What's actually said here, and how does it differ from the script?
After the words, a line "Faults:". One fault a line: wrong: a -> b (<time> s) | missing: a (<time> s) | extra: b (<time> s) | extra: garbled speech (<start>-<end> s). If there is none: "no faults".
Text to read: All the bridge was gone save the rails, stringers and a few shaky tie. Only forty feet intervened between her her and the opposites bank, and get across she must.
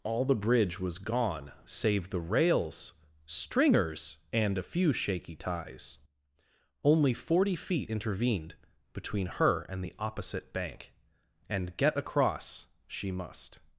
All the bridge was gone save the rails, stringers and a few shaky ties. Only forty feet intervened between her and the opposite bank, and get across she must.
Faults:
wrong: tie -> ties (5.3 s)
missing: her (9.6 s)
wrong: opposites -> opposite (10.0 s)